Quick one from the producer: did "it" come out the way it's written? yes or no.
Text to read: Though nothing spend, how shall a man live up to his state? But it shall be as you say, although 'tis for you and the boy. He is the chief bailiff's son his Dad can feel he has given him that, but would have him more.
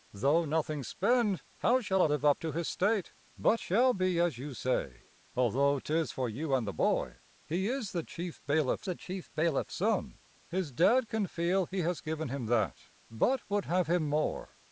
no